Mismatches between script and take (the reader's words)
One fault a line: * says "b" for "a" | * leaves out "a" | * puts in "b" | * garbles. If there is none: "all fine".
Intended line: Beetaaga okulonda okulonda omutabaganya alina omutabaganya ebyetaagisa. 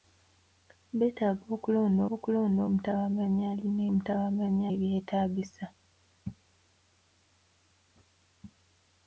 all fine